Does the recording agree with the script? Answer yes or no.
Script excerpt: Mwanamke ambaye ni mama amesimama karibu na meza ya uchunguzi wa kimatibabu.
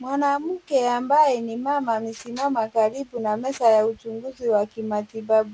yes